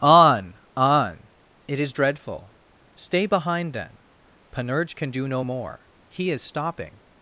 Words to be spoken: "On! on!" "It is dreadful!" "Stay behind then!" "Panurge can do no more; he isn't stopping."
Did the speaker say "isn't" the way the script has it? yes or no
no